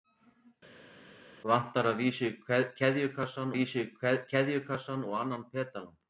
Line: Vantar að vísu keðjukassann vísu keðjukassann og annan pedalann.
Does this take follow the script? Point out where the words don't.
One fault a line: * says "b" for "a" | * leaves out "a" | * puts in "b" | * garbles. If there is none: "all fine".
all fine